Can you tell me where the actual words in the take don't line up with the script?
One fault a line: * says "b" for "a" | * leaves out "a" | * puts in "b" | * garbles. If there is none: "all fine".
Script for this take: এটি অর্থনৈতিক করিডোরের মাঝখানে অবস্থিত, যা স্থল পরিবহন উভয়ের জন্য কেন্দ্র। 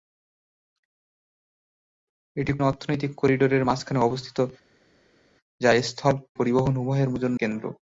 all fine